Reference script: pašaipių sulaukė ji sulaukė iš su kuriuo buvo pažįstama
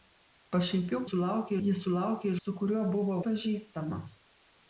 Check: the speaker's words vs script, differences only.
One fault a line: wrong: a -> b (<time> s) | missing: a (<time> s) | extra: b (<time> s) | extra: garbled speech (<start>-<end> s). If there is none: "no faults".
no faults